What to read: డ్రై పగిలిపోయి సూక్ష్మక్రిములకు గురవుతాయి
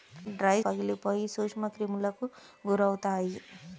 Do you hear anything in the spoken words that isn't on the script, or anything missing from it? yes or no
no